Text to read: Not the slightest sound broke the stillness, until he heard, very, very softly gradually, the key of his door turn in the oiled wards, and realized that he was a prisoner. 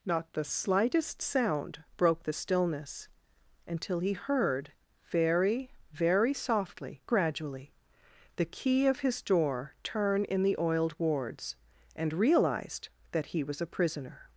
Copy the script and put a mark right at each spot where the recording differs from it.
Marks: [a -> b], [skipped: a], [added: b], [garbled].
Not the slightest sound broke the stillness, until he heard, very, very softly gradually, the key of his door turn in the oiled wards, and realized that he was a prisoner.